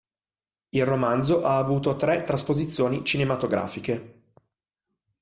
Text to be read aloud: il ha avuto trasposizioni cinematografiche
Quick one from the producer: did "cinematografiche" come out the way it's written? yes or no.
yes